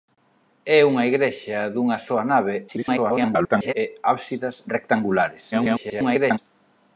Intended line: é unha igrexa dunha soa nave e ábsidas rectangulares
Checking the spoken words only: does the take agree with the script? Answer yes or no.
no